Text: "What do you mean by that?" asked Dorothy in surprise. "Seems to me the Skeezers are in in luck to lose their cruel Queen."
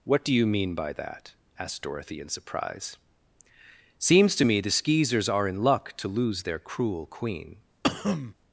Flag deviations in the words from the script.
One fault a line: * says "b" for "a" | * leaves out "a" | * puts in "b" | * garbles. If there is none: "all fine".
* leaves out "in"